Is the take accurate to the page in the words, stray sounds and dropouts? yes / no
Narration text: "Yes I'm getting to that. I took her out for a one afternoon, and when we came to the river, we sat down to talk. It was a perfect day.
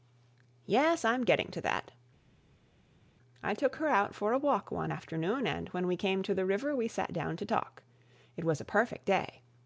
no